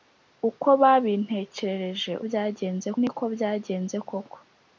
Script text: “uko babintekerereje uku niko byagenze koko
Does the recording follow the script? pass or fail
fail